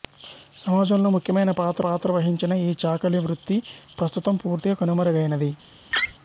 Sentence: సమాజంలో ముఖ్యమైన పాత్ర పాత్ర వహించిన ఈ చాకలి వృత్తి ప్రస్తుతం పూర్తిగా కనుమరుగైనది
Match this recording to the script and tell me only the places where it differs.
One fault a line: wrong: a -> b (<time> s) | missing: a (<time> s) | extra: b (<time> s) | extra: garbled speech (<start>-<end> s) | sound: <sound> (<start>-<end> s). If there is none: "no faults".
sound: laugh (5.9-6.1 s)